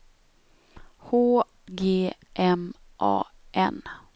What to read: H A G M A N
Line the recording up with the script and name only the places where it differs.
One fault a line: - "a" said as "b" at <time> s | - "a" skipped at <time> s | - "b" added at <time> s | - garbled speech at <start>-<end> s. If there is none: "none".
- "A" skipped at 1.4 s